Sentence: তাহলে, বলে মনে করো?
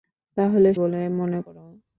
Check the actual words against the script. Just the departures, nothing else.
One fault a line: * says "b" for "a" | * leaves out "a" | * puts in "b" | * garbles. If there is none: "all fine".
all fine